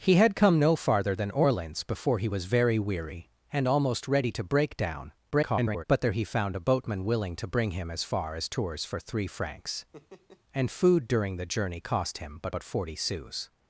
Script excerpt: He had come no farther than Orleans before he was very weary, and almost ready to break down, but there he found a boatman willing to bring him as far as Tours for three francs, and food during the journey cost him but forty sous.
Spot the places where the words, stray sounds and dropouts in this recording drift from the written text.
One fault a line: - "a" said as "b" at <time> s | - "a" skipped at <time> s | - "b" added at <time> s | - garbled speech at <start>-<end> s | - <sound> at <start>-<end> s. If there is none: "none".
- garbled speech at 5.3-5.8 s
- laugh at 9.9-10.4 s
- "but" added at 12.5 s